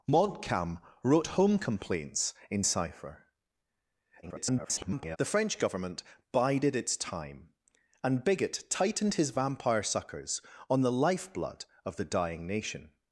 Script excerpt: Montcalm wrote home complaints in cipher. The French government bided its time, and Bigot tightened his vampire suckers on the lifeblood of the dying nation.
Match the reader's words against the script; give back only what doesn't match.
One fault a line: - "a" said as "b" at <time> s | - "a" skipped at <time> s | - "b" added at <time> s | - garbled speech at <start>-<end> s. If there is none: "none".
- garbled speech at 4.2-5.2 s